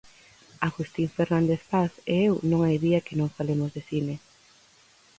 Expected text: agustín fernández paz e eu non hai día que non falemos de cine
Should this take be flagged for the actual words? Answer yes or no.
no